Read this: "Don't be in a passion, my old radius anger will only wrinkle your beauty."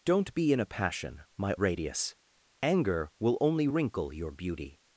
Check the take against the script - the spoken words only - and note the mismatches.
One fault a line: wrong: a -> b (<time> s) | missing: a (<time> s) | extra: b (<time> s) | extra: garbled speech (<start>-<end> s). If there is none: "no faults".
missing: old (1.5 s)